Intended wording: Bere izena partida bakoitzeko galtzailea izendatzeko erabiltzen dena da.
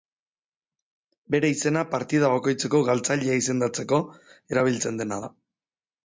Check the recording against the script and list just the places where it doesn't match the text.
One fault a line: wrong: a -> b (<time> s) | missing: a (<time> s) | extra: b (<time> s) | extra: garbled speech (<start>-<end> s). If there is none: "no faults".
no faults